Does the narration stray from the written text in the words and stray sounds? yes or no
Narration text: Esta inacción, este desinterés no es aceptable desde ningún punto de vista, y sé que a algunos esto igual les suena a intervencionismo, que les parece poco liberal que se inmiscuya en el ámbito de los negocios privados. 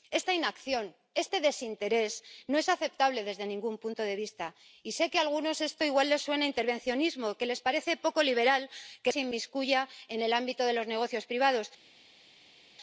no